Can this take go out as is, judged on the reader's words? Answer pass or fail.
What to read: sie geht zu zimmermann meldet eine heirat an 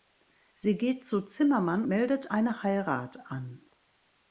pass